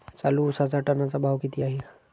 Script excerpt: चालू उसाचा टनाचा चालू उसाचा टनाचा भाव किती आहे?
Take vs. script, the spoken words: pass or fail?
fail